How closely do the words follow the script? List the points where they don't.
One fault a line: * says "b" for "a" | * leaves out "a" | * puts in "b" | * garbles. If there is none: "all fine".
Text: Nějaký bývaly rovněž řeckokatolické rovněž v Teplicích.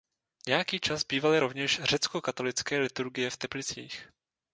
* puts in "čas"
* says "liturgie" for "rovněž"